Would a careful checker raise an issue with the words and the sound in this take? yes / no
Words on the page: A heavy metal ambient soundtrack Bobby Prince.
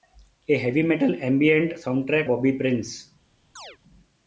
yes